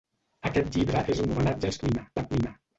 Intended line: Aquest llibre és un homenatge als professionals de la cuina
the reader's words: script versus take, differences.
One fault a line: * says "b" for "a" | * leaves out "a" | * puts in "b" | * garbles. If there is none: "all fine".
* says "cuina" for "professionals"